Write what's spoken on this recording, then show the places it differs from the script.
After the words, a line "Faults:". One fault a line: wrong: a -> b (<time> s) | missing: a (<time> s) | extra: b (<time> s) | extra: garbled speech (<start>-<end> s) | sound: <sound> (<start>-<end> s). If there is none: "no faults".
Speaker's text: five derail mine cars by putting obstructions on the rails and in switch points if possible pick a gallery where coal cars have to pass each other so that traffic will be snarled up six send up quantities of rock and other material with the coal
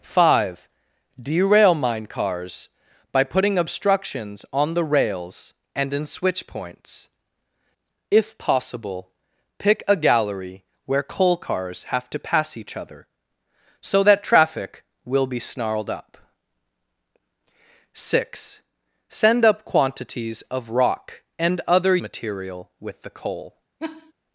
five derail mine cars by putting obstructions on the rails and in switch points if possible pick a gallery where coal cars have to pass each other so that traffic will be snarled up six send up quantities of rock and other material with the coal
Faults:
sound: laugh (23.8-24.1 s)